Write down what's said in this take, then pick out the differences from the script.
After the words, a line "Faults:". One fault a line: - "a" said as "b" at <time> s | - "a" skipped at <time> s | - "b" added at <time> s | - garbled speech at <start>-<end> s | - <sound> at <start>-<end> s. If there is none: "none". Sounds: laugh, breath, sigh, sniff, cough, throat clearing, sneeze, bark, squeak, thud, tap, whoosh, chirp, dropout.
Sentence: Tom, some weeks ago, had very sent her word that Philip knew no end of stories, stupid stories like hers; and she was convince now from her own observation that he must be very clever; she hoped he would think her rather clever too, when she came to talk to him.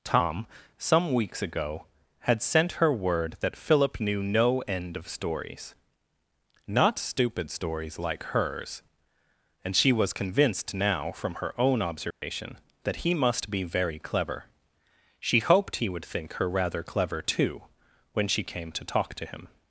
Tom, some weeks ago, had sent her word that Philip knew no end of stories, not stupid stories like hers; and she was convinced now from her own observation that he must be very clever; she hoped he would think her rather clever too, when she came to talk to him.
Faults:
- "very" skipped at 2.4 s
- "not" added at 6.7 s
- "convince" said as "convinced" at 10.1 s
- dropout at 12.1-12.2 s